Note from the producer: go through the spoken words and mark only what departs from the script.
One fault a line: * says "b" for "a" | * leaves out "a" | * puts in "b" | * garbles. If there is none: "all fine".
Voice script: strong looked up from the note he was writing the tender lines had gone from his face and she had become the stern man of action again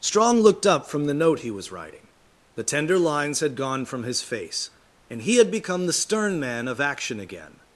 * says "he" for "she"